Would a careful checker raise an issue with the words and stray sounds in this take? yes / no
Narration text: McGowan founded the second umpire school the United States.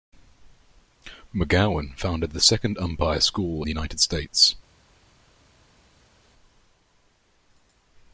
no